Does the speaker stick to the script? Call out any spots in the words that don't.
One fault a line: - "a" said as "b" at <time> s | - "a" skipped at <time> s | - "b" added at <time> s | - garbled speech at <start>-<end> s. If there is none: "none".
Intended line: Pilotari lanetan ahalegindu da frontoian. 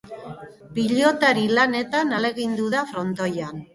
none